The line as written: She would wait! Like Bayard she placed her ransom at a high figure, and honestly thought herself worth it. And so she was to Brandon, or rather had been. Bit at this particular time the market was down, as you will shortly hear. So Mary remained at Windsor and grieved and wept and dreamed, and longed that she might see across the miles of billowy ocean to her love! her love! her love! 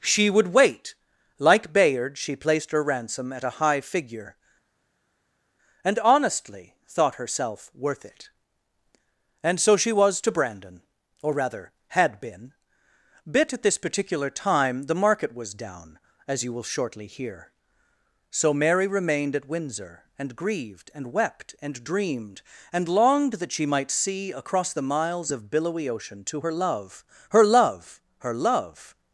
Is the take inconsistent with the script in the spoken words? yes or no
no